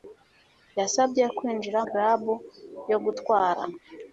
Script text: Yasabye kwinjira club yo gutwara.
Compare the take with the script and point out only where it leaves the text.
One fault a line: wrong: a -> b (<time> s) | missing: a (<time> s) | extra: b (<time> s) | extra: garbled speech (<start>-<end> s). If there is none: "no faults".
no faults